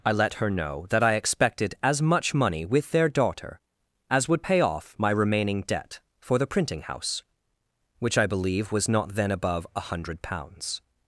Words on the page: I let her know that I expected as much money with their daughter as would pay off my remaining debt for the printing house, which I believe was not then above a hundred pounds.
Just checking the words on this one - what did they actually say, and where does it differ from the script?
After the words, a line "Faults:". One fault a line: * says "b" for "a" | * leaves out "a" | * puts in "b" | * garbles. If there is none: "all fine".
I let her know that I expected as much money with their daughter as would pay off my remaining debt for the printing house, which I believe was not then above a hundred pounds.
Faults:
all fine